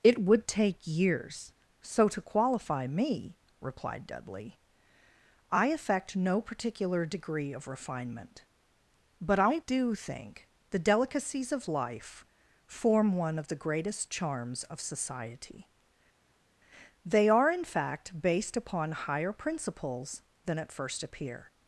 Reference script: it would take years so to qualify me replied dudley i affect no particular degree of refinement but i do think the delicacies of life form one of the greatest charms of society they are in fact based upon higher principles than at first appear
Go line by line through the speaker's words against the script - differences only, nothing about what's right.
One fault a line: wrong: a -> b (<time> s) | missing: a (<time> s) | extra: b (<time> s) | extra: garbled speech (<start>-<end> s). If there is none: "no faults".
no faults